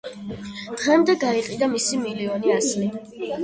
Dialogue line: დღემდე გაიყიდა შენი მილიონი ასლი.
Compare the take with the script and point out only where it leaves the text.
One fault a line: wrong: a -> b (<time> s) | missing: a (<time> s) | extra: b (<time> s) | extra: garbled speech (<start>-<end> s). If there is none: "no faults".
wrong: შენი -> მისი (1.8 s)